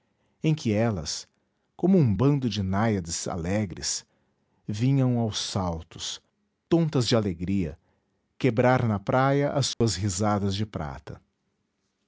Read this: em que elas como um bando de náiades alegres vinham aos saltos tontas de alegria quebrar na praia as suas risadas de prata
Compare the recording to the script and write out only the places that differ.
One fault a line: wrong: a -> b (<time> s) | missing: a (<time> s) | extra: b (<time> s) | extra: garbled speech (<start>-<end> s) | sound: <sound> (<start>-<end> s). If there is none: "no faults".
sound: dropout (9.7-9.8 s)